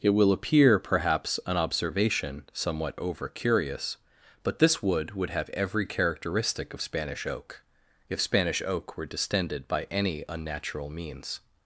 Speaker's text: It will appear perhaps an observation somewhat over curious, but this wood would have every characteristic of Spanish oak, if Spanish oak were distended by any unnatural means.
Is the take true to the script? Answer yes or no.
yes